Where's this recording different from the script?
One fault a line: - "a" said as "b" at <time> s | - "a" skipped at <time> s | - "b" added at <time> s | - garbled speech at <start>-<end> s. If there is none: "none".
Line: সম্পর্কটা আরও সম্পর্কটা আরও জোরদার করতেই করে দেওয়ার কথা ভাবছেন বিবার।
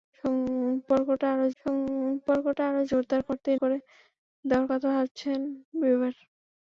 none